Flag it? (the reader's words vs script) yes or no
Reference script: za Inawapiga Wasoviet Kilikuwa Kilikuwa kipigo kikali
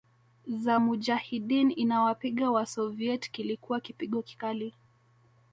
yes